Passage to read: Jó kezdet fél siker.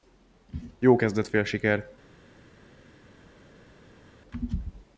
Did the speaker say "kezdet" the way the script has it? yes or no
yes